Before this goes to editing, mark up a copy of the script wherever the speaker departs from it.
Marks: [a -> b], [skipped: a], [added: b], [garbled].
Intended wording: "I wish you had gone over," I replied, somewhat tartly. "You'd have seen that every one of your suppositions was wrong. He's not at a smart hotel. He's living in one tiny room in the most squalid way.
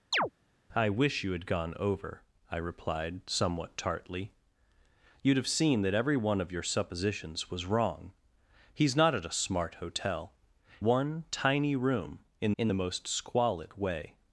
"I wish you had gone over," I replied, somewhat tartly. "You'd have seen that every one of your suppositions was wrong. He's not at a smart hotel. [skipped: He's living in] one tiny room in [added: in] the most squalid way.